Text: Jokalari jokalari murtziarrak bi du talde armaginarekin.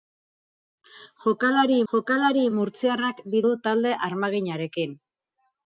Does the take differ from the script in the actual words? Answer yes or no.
no